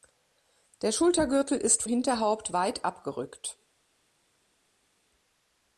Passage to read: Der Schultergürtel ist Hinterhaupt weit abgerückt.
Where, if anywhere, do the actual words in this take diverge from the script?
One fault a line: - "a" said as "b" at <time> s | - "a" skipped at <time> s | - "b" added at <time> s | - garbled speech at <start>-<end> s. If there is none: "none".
none